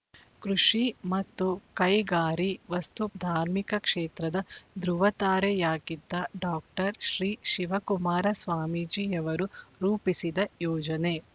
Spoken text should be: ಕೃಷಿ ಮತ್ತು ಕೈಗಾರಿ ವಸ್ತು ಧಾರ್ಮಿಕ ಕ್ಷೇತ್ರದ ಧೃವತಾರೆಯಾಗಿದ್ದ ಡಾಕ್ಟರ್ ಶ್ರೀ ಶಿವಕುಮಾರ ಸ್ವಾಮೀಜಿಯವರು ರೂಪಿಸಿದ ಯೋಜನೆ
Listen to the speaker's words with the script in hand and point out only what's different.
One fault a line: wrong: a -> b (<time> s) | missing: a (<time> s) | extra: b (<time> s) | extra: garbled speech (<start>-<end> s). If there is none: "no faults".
no faults